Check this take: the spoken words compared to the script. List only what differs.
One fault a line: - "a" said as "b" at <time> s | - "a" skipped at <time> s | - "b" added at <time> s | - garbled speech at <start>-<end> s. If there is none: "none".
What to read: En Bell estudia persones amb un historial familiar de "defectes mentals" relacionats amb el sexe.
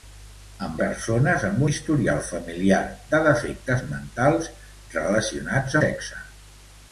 - "Bell estudia" skipped at 0.8 s
- "un" skipped at 1.6 s
- "amb el" skipped at 5.8 s